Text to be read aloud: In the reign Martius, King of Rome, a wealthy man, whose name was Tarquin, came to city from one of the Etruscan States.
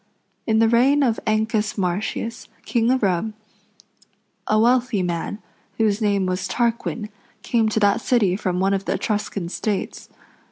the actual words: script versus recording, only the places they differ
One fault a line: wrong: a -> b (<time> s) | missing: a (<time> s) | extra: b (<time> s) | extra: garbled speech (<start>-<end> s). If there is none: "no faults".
extra: of Ancus (1.0 s)
extra: that (7.8 s)